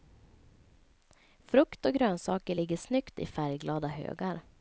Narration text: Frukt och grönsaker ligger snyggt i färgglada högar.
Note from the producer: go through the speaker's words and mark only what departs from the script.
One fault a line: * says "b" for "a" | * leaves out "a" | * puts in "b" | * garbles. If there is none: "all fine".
all fine